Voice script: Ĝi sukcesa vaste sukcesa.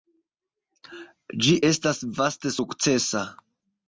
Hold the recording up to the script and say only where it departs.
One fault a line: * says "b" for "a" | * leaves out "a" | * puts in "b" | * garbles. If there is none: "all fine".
* says "estas" for "sukcesa"